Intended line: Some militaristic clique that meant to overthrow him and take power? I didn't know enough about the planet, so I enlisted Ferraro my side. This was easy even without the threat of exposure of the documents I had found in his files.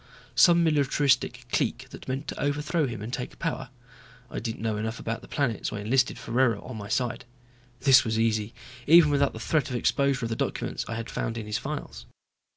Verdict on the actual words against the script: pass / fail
fail